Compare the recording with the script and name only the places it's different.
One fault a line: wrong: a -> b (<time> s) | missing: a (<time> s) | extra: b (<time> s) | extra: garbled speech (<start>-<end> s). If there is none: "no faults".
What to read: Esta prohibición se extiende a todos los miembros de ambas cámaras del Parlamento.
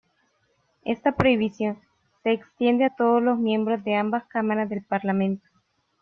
no faults